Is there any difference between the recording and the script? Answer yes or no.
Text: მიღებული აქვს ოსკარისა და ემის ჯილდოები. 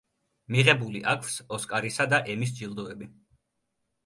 no